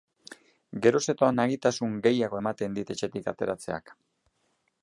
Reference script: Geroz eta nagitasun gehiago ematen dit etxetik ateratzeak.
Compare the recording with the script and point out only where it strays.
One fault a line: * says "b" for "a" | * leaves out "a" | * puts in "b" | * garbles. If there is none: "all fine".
all fine